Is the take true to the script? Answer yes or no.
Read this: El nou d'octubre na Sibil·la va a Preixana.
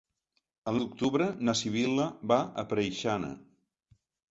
no